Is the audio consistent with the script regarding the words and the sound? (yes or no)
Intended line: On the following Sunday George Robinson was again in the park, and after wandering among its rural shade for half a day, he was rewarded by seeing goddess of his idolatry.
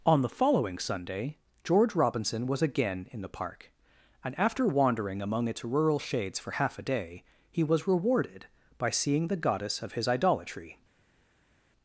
no